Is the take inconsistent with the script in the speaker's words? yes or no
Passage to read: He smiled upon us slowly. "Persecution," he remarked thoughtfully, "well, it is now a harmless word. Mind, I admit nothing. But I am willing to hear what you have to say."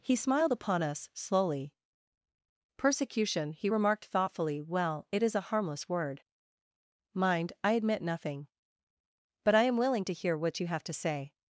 yes